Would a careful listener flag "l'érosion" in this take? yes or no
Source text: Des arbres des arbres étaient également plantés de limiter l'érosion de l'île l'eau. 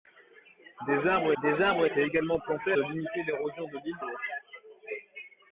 no